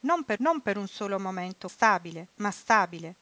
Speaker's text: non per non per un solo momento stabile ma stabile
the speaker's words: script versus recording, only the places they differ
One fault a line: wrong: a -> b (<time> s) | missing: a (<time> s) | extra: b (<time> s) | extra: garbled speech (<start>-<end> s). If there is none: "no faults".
no faults